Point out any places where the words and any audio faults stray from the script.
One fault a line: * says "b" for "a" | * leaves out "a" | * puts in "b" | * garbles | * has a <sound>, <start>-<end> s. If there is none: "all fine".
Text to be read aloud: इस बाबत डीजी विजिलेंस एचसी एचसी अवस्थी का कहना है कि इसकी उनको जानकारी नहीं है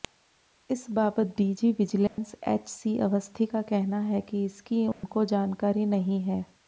* has a dropout, 2.1-2.2 s
* leaves out "एचसी"
* has a dropout, 4.9-5.0 s